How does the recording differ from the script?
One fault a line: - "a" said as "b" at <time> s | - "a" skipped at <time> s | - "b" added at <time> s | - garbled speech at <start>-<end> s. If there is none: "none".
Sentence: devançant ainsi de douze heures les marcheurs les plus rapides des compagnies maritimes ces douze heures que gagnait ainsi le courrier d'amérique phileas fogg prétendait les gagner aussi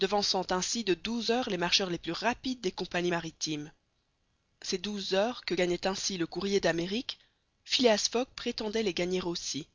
none